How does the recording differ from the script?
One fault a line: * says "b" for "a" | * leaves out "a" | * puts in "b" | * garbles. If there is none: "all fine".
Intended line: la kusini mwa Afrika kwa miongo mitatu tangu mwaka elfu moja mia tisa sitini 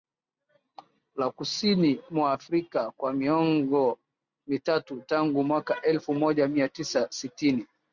all fine